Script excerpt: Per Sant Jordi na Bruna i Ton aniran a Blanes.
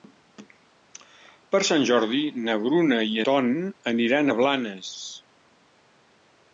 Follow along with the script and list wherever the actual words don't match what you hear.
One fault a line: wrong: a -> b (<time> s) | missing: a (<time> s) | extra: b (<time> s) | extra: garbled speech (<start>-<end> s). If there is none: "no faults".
no faults